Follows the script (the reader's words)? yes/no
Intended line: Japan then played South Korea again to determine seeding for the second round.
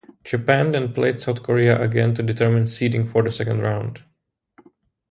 yes